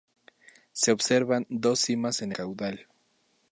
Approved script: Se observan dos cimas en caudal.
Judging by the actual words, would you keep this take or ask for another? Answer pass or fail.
pass